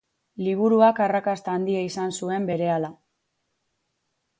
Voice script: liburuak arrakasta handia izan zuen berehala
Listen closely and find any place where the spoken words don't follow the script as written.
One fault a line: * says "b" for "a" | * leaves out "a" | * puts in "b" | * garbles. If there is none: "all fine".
all fine